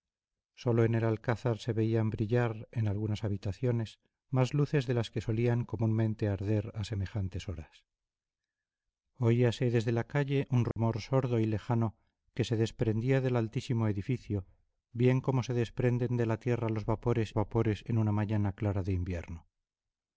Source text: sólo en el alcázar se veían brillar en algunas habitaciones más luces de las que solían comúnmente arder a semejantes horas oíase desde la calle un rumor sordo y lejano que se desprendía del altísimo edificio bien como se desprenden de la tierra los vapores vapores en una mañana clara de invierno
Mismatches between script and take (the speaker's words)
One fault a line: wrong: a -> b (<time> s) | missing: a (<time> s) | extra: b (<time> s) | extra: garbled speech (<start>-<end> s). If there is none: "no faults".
no faults